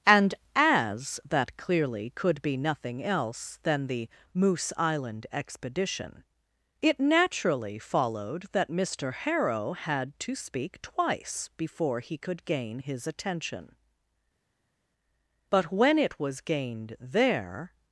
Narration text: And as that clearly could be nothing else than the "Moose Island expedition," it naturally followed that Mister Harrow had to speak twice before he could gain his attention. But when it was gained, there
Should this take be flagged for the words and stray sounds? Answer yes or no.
no